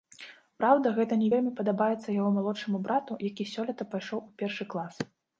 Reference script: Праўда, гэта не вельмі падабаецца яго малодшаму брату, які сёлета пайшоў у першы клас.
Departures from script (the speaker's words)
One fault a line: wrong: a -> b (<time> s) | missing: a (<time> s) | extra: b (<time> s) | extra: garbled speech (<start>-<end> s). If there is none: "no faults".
no faults